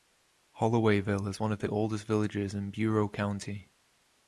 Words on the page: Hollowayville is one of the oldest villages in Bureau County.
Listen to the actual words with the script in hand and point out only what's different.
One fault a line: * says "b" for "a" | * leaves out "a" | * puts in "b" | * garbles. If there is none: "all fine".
all fine